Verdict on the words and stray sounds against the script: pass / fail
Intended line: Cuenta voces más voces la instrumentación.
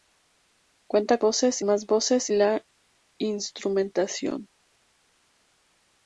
pass